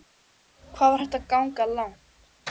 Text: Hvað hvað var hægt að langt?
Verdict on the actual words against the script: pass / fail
fail